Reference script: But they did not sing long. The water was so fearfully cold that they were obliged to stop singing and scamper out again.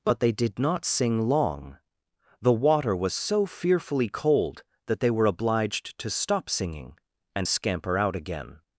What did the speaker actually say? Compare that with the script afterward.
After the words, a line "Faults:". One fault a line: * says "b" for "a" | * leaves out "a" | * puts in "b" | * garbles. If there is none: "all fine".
But they did not sing long. The water was so fearfully cold that they were obliged to stop singing and scamper out again.
Faults:
all fine